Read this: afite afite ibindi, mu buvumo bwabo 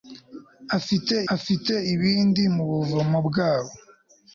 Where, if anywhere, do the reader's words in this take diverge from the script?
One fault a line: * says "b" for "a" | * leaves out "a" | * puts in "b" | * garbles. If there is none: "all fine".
all fine